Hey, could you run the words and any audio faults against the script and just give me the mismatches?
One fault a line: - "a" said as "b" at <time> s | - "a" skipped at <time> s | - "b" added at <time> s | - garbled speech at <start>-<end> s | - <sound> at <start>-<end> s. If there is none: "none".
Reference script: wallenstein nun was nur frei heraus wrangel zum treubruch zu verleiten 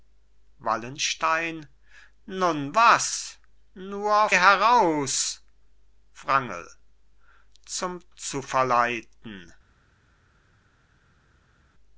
- "frei" skipped at 4.3 s
- "treubruch" skipped at 8.0 s